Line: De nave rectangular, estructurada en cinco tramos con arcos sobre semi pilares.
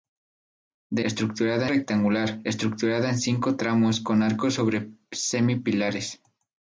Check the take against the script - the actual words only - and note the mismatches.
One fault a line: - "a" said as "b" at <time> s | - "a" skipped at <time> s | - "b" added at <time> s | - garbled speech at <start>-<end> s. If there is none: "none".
- "nave" said as "estructurada" at 1.0 s